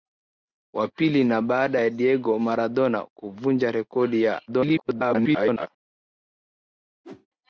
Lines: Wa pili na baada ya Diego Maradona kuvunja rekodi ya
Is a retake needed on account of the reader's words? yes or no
yes